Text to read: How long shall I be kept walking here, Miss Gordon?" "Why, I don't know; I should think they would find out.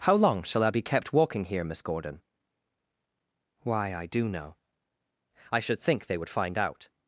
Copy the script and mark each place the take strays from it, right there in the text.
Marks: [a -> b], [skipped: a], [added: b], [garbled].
How long shall I be kept walking here, Miss Gordon?" "Why, I [don't -> do] know; I should think they would find out.